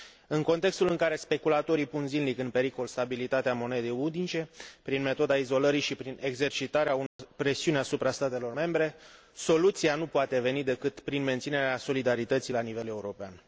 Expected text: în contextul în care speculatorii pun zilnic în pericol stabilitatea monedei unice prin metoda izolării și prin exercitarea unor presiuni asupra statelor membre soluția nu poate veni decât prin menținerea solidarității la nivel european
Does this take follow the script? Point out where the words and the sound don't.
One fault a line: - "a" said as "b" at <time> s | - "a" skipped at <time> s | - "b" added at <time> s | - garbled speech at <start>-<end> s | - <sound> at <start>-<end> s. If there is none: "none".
- dropout at 7.1-7.2 s